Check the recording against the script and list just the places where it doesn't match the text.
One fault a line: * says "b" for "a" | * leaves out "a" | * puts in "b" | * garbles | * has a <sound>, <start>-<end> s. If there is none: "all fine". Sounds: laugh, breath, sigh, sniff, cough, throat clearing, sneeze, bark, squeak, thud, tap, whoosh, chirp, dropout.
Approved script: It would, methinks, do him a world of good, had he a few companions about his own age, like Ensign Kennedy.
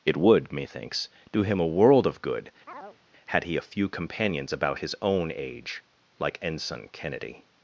* has a chirp, 2.7-3.0 s